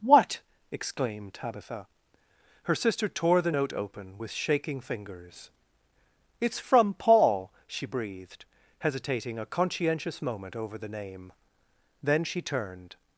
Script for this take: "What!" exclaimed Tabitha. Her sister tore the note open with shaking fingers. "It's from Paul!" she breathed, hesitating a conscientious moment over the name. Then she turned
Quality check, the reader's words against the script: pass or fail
pass